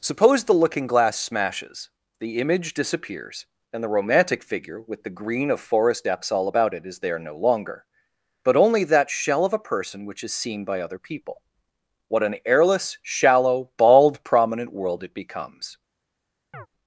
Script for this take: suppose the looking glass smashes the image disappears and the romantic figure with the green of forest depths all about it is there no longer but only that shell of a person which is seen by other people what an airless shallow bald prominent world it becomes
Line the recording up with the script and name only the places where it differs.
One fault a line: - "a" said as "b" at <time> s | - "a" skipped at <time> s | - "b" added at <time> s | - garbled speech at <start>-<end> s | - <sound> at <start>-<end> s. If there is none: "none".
- chirp at 16.5-16.7 s